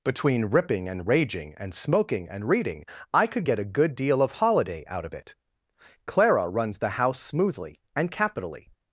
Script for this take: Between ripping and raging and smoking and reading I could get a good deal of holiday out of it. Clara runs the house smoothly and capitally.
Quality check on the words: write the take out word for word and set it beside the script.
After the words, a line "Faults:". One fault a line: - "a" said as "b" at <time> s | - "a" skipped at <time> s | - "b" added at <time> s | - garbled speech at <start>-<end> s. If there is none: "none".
Between ripping and raging and smoking and reading I could get a good deal of holiday out of it. Clara runs the house smoothly and capitally.
Faults:
none